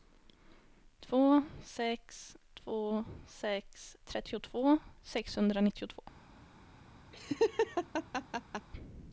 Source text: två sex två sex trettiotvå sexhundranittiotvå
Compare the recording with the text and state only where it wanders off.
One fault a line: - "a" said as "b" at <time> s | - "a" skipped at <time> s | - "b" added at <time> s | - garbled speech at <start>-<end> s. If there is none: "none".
none